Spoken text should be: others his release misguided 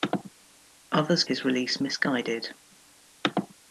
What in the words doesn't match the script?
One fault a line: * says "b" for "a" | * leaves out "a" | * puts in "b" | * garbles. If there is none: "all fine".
all fine